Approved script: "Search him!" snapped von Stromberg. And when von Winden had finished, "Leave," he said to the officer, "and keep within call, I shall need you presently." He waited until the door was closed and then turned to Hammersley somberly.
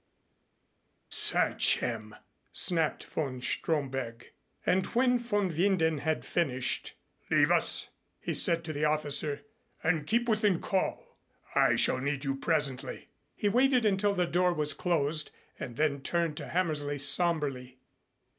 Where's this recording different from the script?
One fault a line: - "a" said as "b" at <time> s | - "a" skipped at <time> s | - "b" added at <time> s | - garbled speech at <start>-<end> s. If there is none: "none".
- "us" added at 7.5 s